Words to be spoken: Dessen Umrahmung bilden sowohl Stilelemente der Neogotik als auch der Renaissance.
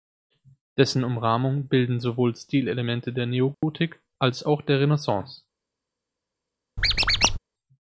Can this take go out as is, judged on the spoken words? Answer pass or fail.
pass